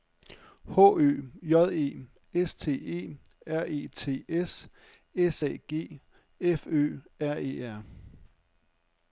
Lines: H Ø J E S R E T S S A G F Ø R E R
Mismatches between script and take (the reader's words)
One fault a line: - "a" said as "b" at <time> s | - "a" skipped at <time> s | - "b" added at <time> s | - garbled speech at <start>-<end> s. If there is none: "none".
- "T E" added at 2.5 s